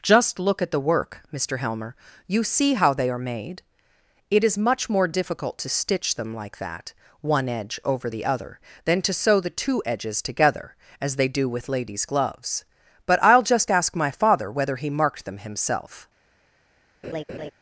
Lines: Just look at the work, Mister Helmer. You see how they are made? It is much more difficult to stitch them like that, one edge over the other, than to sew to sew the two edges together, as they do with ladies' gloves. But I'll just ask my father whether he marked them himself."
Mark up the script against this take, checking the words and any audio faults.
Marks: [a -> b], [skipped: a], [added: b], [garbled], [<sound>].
Just look at the work, Mister Helmer. You see how they are made? It is much more difficult to stitch them like that, one edge over the other, than to sew [skipped: to sew] the two edges together, as they do with ladies' gloves. But I'll just ask my father whether he marked them himself." [laugh]